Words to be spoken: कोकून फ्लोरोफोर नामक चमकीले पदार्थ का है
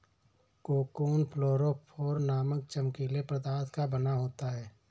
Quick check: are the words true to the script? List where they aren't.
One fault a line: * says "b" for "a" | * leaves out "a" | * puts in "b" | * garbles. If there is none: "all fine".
* puts in "बना होता"